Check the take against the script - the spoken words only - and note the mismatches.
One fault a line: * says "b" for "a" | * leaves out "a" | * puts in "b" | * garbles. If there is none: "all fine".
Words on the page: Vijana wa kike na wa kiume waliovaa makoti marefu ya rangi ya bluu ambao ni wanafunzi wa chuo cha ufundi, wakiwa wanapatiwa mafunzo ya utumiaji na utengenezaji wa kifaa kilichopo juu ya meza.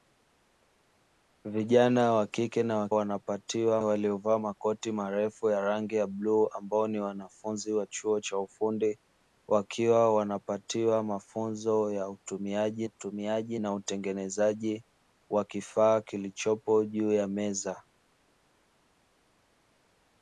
* says "wanapatiwa" for "kiume"
* puts in "utumiaji"